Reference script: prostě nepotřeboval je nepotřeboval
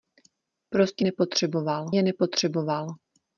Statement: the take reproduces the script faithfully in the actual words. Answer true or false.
true